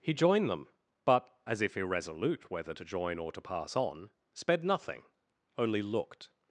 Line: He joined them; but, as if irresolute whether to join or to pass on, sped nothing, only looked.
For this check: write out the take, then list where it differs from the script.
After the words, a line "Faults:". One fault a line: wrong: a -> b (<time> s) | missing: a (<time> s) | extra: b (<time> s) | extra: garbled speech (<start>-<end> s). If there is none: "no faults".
He joined them; but, as if irresolute whether to join or to pass on, sped nothing, only looked.
Faults:
no faults